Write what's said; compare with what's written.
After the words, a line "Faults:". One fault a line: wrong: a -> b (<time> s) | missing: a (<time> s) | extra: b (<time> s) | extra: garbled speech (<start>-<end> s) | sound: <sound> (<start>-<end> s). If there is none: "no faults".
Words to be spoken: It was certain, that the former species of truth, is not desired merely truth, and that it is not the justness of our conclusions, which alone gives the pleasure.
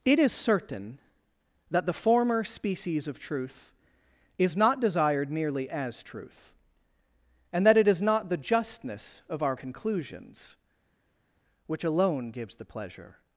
It is certain, that the former species of truth, is not desired merely as truth, and that it is not the justness of our conclusions, which alone gives the pleasure.
Faults:
wrong: was -> is (0.2 s)
extra: as (5.7 s)